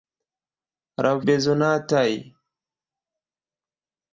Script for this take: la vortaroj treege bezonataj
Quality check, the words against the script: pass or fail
fail